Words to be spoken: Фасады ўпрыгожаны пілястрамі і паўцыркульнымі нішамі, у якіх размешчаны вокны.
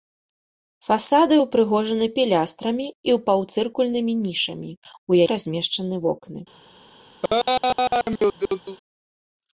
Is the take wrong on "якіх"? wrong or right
wrong